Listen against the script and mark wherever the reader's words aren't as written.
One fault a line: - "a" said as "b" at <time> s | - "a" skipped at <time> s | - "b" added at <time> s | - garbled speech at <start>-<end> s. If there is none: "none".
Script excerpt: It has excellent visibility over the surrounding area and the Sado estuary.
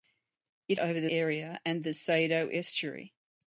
- "has excellent visibility" skipped at 0.8 s
- "surrounding" skipped at 1.1 s